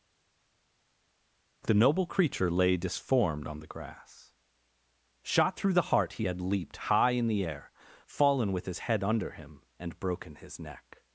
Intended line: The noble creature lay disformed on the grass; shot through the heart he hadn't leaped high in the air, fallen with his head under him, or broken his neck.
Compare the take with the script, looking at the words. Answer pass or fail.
fail